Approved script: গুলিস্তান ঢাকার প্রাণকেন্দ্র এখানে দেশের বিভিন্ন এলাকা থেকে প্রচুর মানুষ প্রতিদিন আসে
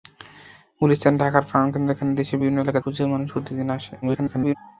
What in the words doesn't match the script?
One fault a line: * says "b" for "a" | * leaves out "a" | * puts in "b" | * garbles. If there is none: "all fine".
* leaves out "থেকে"
* garbles